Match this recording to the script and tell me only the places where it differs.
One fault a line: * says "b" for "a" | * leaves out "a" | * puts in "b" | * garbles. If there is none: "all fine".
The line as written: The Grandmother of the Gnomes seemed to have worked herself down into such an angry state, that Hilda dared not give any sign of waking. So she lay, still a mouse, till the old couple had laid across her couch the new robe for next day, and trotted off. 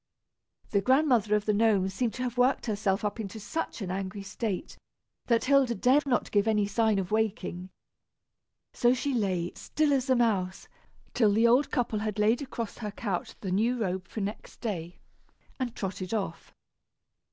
* says "up" for "down"
* puts in "as"